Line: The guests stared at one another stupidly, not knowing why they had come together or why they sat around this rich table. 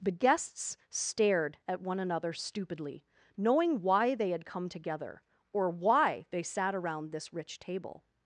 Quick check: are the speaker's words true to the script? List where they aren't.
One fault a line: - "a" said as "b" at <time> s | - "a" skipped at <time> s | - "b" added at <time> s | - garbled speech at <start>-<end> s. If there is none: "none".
- "not" skipped at 3.0 s